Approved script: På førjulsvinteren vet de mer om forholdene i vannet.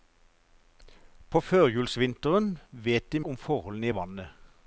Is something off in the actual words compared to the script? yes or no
yes